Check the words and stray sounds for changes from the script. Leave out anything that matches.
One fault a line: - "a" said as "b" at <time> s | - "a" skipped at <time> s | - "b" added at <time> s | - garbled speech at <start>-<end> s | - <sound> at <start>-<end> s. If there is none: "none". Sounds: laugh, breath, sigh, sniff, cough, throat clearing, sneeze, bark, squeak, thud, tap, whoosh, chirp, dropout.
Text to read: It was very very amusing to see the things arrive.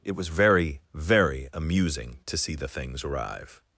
none